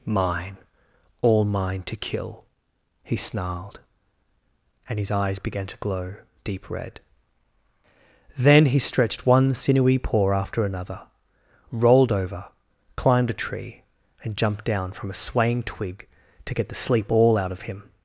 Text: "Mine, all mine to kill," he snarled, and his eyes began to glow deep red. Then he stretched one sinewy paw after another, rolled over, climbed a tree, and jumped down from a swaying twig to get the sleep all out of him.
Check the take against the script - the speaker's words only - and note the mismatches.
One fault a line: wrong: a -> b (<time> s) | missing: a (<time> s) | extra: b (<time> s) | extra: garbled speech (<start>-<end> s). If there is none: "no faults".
no faults